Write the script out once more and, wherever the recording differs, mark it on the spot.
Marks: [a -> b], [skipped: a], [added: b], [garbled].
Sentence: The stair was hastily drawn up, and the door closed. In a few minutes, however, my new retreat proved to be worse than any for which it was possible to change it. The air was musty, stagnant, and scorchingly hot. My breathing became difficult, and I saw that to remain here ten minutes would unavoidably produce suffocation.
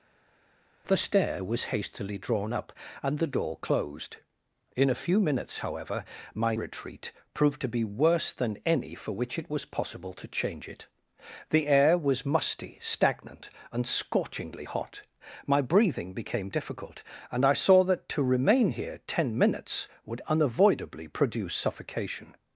The stair was hastily drawn up, and the door closed. In a few minutes, however, my [skipped: new] retreat proved to be worse than any for which it was possible to change it. The air was musty, stagnant, and scorchingly hot. My breathing became difficult, and I saw that to remain here ten minutes would unavoidably produce suffocation.